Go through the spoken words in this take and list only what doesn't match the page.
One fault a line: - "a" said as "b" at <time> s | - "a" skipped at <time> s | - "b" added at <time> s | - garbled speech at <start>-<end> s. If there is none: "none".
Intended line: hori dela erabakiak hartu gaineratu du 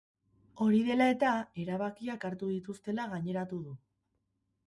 - "eta" added at 1.1 s
- "dituztela" added at 2.5 s